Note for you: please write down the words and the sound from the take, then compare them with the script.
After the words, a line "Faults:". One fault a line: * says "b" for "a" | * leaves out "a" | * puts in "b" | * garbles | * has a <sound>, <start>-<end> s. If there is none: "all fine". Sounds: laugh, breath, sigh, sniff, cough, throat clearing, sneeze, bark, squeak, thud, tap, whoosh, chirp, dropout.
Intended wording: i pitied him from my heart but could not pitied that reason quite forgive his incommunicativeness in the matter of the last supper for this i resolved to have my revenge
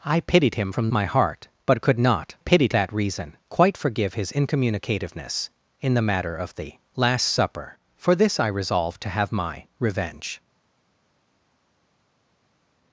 i pitied him from my heart but could not pitied that reason quite forgive his incommunicativeness in the matter of the last supper for this i resolved to have my revenge
Faults:
all fine